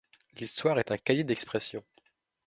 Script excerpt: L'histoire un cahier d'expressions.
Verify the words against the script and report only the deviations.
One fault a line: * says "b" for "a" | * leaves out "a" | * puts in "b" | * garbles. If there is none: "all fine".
* puts in "est"